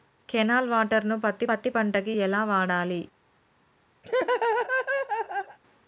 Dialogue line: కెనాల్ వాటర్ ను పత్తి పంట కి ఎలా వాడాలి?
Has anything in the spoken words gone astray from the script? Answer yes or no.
yes